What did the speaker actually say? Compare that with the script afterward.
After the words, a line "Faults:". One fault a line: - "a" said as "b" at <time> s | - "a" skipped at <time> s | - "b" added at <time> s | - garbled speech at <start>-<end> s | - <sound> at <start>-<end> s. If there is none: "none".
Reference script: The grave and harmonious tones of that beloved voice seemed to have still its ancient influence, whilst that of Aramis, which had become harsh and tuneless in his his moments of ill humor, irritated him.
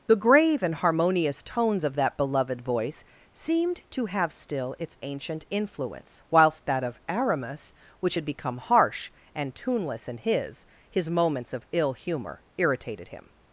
The grave and harmonious tones of that beloved voice seemed to have still its ancient influence, whilst that of Aramis, which had become harsh and tuneless in his his moments of ill humor, irritated him.
Faults:
none